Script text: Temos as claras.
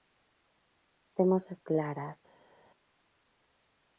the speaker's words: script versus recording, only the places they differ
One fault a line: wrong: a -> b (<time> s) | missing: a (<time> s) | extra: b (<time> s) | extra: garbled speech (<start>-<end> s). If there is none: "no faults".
no faults